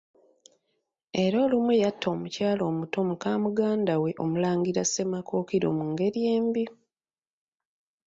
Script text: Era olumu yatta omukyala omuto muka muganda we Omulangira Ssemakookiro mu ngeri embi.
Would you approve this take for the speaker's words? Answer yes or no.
yes